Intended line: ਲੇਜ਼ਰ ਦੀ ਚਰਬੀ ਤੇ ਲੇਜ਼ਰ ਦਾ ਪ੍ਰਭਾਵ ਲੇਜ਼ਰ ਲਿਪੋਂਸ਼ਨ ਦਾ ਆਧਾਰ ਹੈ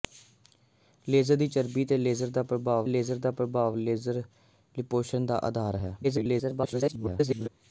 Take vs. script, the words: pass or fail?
fail